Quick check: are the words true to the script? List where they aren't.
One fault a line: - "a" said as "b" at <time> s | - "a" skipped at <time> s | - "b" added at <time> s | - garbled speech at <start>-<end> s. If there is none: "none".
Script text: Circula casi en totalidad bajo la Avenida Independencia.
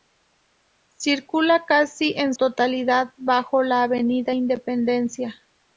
none